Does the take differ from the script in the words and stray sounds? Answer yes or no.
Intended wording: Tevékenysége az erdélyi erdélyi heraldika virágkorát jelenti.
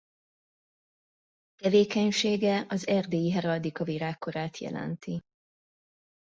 yes